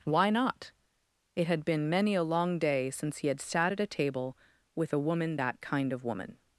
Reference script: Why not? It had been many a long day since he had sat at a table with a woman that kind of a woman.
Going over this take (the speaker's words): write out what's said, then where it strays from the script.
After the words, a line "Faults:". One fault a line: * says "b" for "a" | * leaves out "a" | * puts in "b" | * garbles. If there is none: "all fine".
Why not? It had been many a long day since he had sat at a table with a woman that kind of woman.
Faults:
* leaves out "a"